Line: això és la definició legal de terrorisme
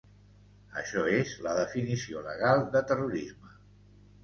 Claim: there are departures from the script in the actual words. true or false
false